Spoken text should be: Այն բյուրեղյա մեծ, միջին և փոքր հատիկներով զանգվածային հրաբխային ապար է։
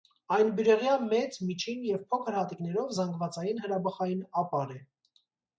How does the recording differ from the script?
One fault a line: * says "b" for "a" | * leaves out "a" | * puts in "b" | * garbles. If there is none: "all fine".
all fine